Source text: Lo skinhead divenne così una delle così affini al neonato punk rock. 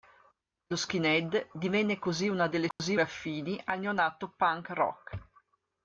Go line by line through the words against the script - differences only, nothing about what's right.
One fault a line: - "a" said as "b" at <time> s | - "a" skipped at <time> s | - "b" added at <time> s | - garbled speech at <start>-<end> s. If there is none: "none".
none